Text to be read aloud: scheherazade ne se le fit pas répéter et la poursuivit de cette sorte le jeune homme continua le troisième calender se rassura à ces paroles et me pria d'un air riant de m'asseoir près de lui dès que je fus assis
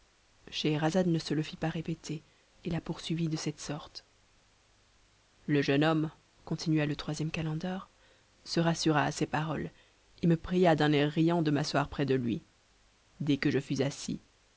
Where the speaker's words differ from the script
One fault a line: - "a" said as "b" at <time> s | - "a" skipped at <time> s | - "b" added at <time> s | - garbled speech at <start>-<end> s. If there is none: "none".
none